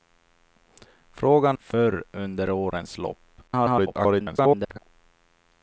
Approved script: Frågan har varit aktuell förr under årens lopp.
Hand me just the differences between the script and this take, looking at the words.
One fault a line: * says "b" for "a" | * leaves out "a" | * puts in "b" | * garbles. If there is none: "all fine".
* leaves out "har varit aktuell"
* garbles